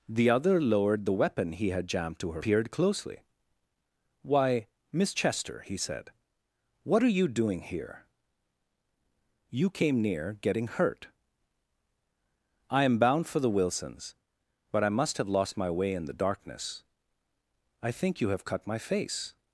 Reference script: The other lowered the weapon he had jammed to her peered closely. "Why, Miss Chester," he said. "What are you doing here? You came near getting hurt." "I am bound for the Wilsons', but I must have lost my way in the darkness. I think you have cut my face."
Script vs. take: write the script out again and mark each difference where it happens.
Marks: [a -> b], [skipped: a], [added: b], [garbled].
The other lowered the weapon he had jammed to her peered closely. "Why, Miss Chester," he said. "What are you doing here? You came near getting hurt." "I am bound for the Wilsons', but I must have lost my way in the darkness. I think you have cut my face."